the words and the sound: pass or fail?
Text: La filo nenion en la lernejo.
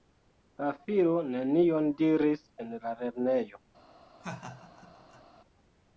fail